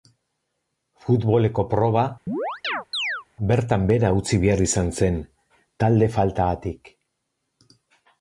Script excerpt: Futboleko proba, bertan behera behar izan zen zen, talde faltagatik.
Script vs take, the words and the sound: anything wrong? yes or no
yes